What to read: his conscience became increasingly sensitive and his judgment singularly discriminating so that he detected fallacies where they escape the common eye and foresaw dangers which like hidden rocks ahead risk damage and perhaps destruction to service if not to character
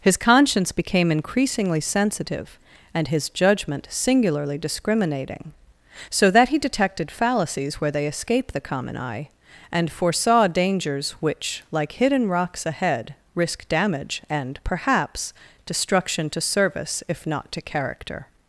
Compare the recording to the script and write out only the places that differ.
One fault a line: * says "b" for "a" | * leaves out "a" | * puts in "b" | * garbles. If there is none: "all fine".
all fine